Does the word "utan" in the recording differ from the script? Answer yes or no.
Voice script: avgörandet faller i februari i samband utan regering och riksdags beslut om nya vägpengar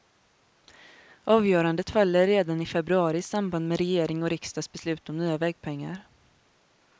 yes